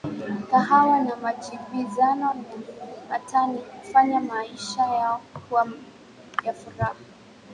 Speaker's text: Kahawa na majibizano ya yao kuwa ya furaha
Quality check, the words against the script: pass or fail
fail